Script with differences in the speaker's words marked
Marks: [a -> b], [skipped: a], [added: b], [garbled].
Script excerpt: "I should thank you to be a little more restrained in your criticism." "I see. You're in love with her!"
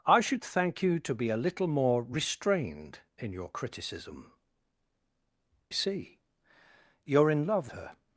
"I should thank you to be a little more restrained in your criticism." [skipped: "I] see. You're in love [skipped: with] her!"